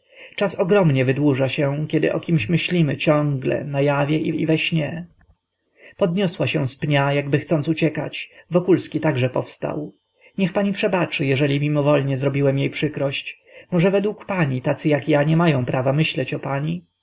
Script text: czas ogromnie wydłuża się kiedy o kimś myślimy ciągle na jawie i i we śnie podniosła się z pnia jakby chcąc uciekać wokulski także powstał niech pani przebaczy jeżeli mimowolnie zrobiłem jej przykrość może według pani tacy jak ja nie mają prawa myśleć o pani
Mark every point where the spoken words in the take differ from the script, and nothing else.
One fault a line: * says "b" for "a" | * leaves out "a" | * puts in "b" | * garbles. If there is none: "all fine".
all fine